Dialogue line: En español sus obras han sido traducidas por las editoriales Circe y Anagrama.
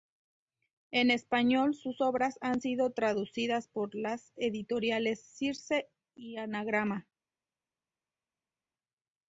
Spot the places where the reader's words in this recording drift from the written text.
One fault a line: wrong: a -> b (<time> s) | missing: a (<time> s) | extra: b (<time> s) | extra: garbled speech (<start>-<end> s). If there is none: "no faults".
no faults